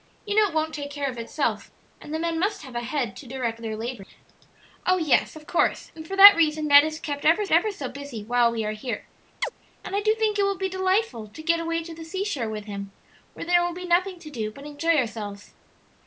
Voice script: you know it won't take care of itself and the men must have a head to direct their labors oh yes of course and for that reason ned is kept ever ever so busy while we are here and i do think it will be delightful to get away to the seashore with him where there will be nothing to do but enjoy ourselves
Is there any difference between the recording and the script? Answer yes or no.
no